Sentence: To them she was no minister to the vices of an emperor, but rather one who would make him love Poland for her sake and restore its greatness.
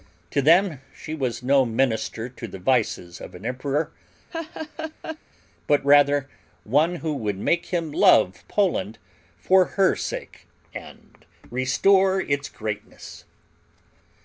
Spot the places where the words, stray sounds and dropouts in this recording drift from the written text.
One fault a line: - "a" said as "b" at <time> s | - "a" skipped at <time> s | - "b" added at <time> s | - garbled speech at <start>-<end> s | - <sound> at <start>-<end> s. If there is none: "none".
- laugh at 4.3-5.2 s